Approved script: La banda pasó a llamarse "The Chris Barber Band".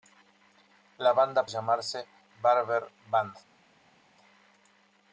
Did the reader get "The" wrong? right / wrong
wrong